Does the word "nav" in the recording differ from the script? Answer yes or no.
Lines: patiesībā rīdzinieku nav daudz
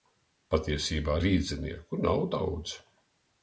no